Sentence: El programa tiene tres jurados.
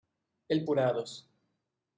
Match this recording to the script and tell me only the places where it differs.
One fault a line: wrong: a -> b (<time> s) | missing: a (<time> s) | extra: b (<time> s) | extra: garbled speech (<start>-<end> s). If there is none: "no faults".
missing: programa tiene tres (0.7 s)